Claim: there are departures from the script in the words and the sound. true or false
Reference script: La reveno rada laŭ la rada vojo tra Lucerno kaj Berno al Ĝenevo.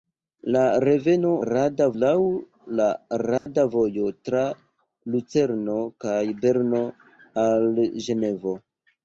true